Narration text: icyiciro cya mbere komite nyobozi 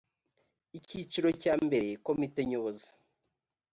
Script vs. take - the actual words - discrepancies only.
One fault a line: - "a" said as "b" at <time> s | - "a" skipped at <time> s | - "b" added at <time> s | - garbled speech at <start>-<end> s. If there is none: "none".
none